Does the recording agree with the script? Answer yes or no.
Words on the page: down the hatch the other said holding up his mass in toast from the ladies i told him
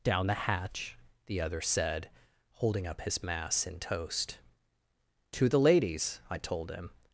no